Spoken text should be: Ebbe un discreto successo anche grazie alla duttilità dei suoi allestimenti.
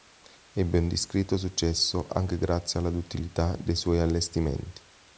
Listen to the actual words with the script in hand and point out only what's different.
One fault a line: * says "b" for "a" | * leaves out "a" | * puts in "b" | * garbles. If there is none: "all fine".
all fine